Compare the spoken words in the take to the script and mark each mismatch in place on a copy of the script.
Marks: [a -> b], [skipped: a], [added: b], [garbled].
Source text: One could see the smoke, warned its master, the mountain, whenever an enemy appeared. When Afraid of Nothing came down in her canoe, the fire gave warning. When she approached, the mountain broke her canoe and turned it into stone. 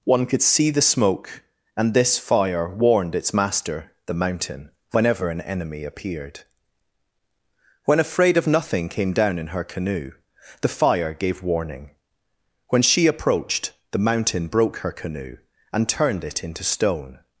One could see the smoke, [added: and this fire] warned its master, the mountain, whenever an enemy appeared. When Afraid of Nothing came down in her canoe, the fire gave warning. When she approached, the mountain broke her canoe and turned it into stone.